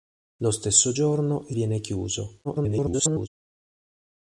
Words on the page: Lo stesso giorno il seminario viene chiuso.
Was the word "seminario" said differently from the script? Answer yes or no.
yes